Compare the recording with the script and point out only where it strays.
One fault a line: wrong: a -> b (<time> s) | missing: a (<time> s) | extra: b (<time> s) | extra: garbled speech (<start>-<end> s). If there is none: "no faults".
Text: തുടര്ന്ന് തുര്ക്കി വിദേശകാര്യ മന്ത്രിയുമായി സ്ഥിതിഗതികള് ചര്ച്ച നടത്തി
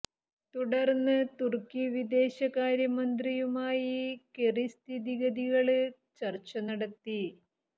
extra: കെറി (4.3 s)